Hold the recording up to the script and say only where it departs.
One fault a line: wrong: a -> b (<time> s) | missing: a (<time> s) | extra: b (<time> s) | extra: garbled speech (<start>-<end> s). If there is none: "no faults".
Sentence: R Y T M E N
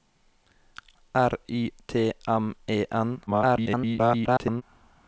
extra: garbled speech (3.3-4.6 s)